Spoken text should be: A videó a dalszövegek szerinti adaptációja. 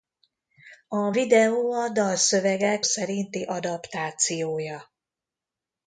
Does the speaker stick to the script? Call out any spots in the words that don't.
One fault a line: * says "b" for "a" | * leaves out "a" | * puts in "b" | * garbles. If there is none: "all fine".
all fine